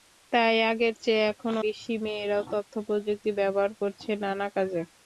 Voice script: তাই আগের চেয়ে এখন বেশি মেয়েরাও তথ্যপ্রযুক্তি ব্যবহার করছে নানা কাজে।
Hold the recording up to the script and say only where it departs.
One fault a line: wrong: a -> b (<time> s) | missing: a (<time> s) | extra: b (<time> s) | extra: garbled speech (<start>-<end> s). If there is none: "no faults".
no faults